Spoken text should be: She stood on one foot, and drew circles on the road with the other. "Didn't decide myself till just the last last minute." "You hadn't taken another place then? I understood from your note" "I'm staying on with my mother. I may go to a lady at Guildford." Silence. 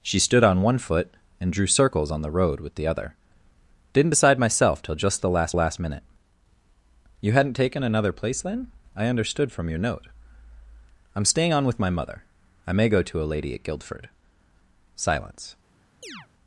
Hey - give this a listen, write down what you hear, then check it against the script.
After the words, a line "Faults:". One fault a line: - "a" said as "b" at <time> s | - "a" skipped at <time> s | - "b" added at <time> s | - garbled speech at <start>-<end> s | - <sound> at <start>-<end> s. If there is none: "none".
She stood on one foot, and drew circles on the road with the other. "Didn't decide myself till just the last last minute." "You hadn't taken another place then? I understood from your note" "I'm staying on with my mother. I may go to a lady at Guildford." Silence.
Faults:
- chirp at 16.0-16.3 s